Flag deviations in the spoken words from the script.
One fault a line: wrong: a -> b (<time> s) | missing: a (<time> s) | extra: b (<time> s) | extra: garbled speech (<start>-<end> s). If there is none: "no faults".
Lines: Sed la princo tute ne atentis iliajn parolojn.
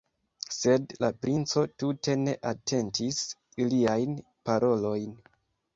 no faults